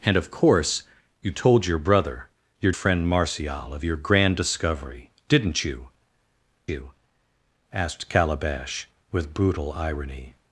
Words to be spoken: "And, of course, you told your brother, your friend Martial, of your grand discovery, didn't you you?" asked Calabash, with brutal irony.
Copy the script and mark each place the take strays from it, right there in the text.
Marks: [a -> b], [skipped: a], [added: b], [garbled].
"And, of course, you told your brother, your friend Martial, of your grand discovery, didn't you you?" asked Calabash, with brutal irony.